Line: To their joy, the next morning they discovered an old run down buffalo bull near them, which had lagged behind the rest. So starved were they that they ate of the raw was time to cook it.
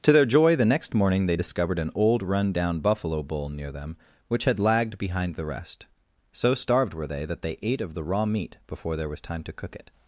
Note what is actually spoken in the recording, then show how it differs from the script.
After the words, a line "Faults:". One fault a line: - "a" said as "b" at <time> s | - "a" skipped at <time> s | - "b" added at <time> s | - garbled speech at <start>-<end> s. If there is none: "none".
To their joy, the next morning they discovered an old run down buffalo bull near them, which had lagged behind the rest. So starved were they that they ate of the raw meat before there was time to cook it.
Faults:
- "meat before there" added at 8.2 s